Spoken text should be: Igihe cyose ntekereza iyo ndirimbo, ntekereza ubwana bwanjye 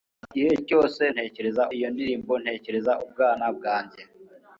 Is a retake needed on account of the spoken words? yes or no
no